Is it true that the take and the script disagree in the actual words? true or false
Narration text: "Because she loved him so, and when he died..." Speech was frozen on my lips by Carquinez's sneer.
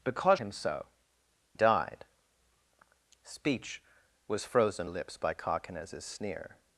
true